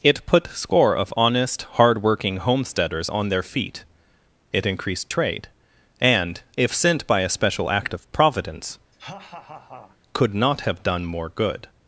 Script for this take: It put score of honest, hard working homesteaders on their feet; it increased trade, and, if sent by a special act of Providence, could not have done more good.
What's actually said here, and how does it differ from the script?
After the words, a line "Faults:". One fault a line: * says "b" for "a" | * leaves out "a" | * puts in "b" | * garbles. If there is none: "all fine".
It put score of honest, hard working homesteaders on their feet; it increased trade, and, if sent by a special act of Providence, could not have done more good.
Faults:
all fine